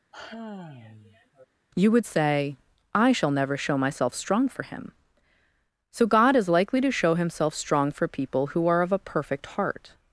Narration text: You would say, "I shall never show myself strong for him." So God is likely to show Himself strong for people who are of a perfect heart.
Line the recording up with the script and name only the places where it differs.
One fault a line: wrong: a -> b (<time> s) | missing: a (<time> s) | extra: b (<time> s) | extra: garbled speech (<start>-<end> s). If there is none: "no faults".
no faults